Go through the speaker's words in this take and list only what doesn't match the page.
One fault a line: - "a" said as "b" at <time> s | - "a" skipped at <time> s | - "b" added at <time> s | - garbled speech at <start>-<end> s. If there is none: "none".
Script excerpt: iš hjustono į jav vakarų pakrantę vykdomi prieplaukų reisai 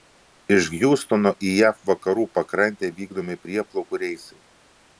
none